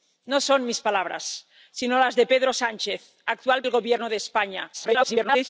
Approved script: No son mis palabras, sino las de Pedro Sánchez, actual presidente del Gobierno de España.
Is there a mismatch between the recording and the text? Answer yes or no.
yes